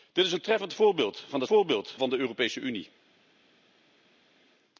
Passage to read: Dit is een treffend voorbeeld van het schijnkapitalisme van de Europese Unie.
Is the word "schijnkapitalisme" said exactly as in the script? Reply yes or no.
no